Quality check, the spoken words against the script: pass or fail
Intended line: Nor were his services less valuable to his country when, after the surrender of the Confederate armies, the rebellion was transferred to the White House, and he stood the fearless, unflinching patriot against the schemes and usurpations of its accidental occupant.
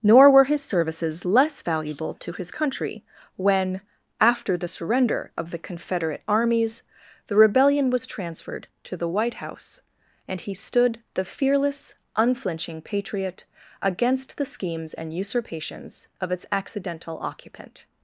pass